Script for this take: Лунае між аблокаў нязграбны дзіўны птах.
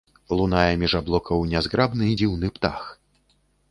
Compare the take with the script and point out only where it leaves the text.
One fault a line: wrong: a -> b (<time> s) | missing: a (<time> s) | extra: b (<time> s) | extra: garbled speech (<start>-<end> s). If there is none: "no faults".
no faults